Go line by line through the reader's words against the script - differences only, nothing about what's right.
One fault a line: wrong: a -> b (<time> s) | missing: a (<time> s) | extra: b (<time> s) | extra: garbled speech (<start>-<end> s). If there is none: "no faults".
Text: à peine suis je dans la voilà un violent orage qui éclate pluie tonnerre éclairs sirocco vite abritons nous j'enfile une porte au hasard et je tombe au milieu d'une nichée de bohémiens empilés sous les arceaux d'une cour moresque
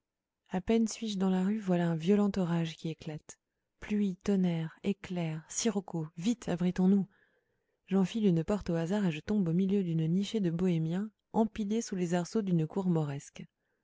extra: rue (1.4 s)